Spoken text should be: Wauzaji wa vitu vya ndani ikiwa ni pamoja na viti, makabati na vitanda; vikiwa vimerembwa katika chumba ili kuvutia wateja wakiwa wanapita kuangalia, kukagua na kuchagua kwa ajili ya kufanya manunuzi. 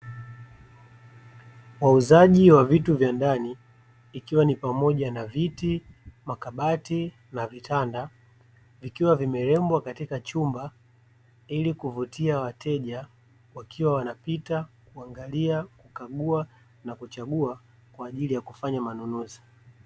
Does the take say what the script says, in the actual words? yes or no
yes